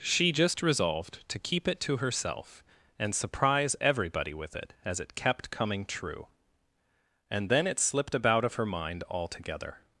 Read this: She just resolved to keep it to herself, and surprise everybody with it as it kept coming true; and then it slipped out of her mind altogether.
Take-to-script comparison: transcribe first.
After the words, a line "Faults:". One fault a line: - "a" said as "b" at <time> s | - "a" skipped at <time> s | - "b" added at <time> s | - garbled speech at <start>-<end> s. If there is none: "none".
She just resolved to keep it to herself, and surprise everybody with it as it kept coming true; and then it slipped about of her mind altogether.
Faults:
- "out" said as "about" at 8.2 s